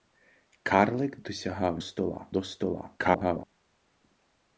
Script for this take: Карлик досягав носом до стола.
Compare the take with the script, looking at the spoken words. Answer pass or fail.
fail